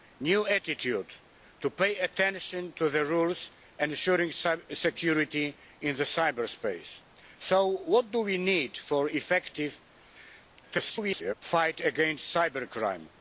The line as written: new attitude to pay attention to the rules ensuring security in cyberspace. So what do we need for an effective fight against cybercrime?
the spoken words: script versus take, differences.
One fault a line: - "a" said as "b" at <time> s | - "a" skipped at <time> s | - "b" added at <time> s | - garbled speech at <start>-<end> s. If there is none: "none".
- garbled speech at 10.6-11.3 s